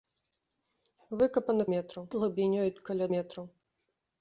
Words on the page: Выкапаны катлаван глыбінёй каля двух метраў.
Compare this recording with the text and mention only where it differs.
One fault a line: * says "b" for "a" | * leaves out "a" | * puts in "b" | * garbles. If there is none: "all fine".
* says "метраў" for "катлаван"
* leaves out "двух"